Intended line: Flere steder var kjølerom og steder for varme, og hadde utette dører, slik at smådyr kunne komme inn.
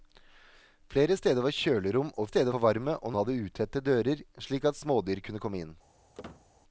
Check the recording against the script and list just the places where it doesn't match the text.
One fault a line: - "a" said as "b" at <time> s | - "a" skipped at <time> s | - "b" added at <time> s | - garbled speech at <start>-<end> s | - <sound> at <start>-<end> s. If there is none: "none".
- squeak at 6.1-6.5 s